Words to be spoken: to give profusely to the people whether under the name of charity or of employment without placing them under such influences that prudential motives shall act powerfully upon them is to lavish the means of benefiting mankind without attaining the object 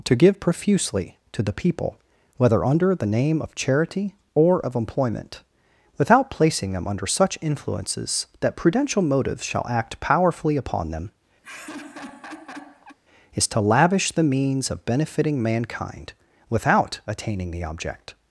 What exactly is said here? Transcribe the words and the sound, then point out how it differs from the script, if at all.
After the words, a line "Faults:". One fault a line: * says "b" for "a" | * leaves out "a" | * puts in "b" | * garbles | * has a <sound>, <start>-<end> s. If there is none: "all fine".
to give profusely to the people whether under the name of charity or of employment without placing them under such influences that prudential motives shall act powerfully upon them is to lavish the means of benefiting mankind without attaining the object
Faults:
* has a laugh, 11.4-13.0 s